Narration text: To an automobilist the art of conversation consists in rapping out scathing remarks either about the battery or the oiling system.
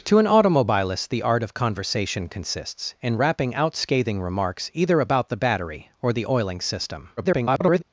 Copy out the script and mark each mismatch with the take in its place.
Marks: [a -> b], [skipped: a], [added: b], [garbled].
To an automobilist the art of conversation consists in rapping out scathing remarks either about the battery or the oiling system. [garbled]